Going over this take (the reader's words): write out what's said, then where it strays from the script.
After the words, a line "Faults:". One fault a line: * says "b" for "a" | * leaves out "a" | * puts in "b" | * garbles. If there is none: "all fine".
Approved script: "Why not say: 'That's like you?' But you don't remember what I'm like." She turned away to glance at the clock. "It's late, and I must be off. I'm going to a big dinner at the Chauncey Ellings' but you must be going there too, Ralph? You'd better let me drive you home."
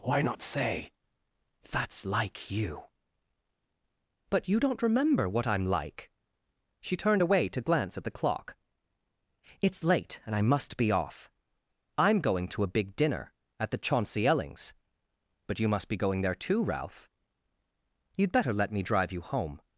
"Why not say: 'That's like you?' But you don't remember what I'm like." She turned away to glance at the clock. "It's late, and I must be off. I'm going to a big dinner at the Chauncey Ellings' but you must be going there too, Ralph? You'd better let me drive you home."
Faults:
all fine